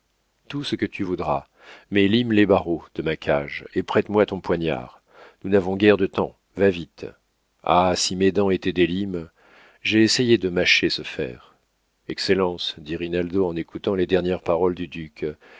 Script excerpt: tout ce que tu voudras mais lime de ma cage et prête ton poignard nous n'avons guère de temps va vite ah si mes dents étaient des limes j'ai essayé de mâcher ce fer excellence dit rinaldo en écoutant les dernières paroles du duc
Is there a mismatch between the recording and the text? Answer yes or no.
yes